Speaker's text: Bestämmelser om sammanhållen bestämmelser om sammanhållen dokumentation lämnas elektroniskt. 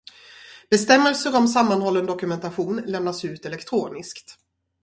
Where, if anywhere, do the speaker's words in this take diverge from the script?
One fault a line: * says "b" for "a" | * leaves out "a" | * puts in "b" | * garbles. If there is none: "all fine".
* leaves out "bestämmelser om sammanhållen"
* puts in "ut"